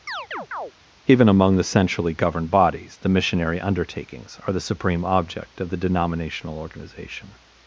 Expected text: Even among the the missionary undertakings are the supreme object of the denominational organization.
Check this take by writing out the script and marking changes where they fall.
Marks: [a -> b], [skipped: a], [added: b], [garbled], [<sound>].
[chirp] Even among the [added: centrally governed bodies] the missionary undertakings are the supreme object of the denominational organization.